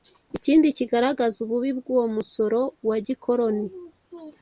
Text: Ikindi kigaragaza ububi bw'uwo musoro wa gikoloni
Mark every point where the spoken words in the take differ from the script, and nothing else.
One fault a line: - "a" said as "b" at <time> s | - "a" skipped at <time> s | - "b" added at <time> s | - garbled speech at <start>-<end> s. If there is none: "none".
none